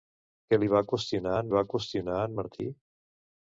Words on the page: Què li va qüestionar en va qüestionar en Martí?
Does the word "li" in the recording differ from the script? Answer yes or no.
no